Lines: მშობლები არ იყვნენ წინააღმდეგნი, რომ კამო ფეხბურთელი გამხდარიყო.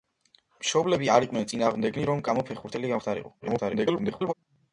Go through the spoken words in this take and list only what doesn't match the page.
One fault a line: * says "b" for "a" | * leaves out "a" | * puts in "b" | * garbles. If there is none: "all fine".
* garbles